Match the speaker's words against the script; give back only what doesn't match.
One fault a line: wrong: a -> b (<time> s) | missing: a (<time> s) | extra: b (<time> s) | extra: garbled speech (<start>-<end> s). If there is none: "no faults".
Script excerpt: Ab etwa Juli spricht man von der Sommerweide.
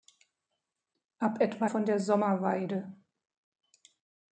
missing: Juli spricht man (1.7 s)